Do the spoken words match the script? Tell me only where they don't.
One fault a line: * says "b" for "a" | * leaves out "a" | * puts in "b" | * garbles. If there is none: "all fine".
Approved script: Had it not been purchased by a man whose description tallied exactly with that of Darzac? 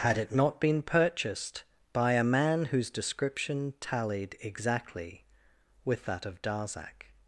all fine